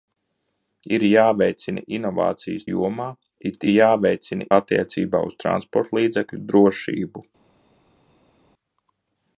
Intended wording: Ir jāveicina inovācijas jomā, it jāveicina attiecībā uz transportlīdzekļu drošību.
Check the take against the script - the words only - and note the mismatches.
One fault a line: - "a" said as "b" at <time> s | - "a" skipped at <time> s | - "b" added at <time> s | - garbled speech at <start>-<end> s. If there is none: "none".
none